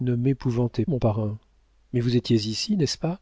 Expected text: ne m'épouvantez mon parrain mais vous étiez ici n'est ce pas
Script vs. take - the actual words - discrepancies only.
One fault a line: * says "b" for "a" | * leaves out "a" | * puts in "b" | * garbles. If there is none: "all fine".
all fine